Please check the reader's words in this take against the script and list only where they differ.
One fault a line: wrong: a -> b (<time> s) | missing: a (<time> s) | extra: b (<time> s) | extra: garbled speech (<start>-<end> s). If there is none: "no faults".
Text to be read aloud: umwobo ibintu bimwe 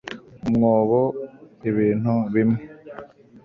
no faults